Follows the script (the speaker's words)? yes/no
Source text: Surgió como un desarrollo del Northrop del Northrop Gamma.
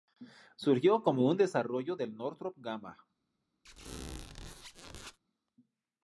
no